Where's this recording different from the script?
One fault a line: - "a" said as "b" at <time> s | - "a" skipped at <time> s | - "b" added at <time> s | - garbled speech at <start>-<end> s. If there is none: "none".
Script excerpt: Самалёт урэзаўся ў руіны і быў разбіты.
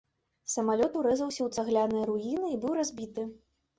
- "цагляныя" added at 1.6 s